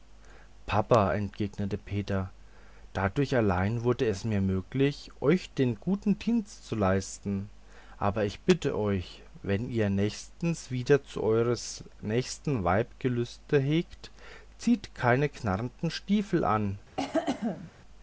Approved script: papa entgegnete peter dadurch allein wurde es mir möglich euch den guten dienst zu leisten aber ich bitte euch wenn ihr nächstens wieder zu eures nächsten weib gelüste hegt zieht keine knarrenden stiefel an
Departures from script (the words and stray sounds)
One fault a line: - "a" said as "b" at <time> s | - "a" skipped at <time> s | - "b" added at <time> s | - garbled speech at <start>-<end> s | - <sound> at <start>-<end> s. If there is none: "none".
- cough at 17.0-17.7 s